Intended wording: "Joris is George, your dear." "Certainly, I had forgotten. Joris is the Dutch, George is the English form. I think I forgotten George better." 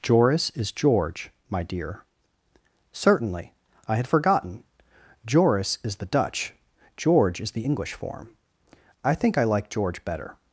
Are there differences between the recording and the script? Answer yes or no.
yes